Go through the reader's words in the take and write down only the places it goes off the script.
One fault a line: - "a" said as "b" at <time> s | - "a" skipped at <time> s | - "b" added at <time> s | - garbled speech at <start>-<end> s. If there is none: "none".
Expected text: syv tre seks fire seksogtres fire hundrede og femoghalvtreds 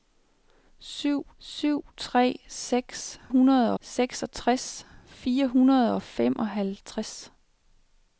- "syv" added at 1.4 s
- "fire" said as "hundrede" at 3.3 s